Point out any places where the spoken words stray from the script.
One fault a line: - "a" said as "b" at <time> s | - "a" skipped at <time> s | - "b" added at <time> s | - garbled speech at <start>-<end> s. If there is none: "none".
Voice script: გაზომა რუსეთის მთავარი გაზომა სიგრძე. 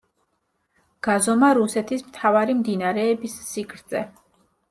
- "გაზომა" said as "მდინარეების" at 2.6 s